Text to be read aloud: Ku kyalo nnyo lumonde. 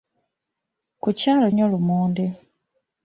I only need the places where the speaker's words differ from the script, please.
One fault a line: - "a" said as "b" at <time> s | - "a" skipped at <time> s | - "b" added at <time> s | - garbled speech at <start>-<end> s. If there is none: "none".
none